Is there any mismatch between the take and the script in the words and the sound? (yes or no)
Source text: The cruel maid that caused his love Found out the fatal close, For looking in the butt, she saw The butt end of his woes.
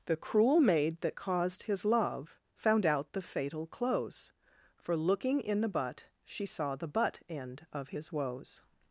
no